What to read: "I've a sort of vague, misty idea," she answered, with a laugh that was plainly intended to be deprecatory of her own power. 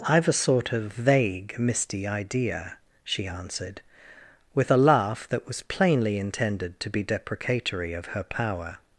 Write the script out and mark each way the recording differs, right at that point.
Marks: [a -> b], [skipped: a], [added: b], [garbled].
"I've a sort of vague, misty idea," she answered, with a laugh that was plainly intended to be deprecatory of her [skipped: own] power.